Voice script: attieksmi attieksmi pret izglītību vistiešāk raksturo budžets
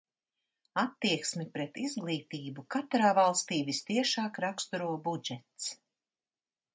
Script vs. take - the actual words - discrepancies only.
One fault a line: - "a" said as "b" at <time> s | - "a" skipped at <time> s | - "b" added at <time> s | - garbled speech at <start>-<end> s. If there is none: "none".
- "attieksmi" skipped at 1.4 s
- "katrā valstī" added at 2.8 s